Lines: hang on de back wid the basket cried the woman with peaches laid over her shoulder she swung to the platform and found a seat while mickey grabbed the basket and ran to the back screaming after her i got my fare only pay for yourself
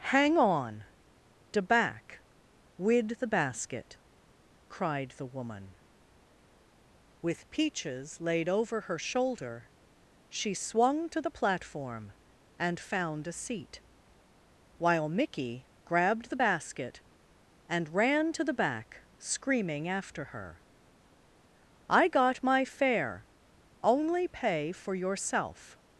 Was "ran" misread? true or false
false